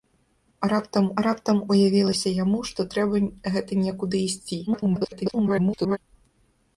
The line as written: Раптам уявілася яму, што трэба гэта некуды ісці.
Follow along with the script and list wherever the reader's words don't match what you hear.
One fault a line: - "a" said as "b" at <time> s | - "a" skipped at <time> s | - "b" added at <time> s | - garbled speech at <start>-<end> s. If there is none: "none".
- "раптам" added at 1.2 s
- garbled speech at 4.7-6.0 s